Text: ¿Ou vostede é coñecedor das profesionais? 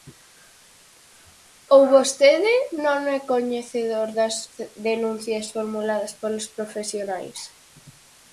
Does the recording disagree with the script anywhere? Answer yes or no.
yes